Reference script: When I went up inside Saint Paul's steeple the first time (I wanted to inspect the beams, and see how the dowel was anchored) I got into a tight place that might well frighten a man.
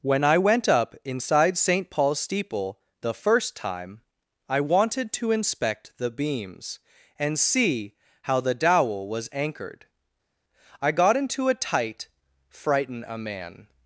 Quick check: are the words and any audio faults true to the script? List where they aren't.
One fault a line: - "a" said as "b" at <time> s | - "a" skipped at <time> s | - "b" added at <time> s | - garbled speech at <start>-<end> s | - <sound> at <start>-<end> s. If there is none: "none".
- "place that might well" skipped at 12.1 s